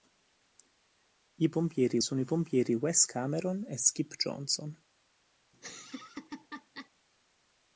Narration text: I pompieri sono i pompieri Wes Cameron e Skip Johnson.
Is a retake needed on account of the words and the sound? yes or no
yes